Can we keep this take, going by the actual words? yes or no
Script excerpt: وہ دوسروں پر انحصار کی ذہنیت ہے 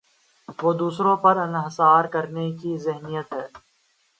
no